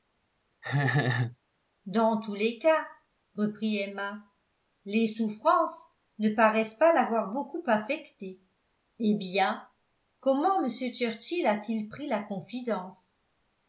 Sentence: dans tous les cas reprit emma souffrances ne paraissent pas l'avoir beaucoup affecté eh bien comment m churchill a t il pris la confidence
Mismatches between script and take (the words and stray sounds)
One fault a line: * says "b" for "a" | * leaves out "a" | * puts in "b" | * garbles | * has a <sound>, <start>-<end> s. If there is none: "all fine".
* has a laugh, 0.6-1.4 s
* puts in "les"